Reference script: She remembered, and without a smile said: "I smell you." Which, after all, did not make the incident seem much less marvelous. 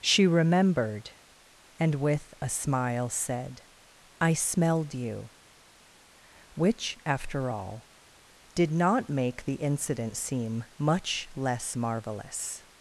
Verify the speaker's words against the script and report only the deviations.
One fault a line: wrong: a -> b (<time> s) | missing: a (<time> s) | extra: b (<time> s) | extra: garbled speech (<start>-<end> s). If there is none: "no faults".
wrong: without -> with (1.9 s)
wrong: smell -> smelled (4.3 s)